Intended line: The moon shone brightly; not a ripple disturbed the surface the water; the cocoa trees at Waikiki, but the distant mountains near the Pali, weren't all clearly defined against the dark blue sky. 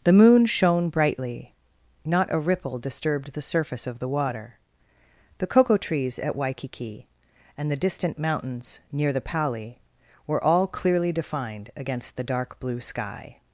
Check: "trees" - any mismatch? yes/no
no